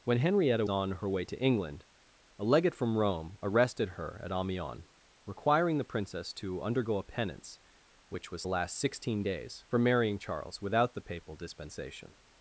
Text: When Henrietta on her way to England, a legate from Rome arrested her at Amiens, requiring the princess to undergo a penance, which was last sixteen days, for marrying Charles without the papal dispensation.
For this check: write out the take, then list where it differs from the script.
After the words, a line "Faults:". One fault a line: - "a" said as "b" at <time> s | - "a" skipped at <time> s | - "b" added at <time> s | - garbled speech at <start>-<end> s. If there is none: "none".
When Henrietta on her way to England, a legate from Rome arrested her at Amiens, requiring the princess to undergo a penance, which was last sixteen days, for marrying Charles without the papal dispensation.
Faults:
none